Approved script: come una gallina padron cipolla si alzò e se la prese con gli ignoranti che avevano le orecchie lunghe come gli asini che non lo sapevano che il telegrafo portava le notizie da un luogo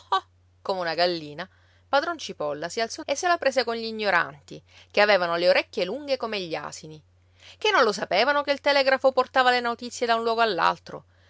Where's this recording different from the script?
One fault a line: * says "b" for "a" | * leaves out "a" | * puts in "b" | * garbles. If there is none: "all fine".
all fine